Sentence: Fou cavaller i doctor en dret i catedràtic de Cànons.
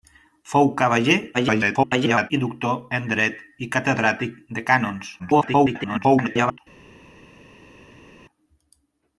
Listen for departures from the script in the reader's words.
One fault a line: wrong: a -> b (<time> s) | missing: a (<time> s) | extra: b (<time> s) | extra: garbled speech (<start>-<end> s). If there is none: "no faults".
extra: garbled speech (1.3-2.3 s)
extra: garbled speech (5.2-6.6 s)